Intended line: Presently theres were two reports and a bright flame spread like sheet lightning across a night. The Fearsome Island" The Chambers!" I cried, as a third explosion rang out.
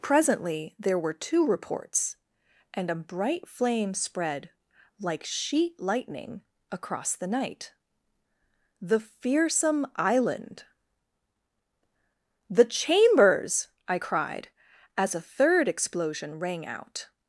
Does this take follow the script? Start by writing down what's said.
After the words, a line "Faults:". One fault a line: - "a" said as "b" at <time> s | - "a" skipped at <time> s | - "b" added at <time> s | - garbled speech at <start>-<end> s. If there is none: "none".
Presently there were two reports and a bright flame spread like sheet lightning across the night. The Fearsome Island" The Chambers!" I cried, as a third explosion rang out.
Faults:
- "theres" said as "there" at 0.8 s
- "a" said as "the" at 7.2 s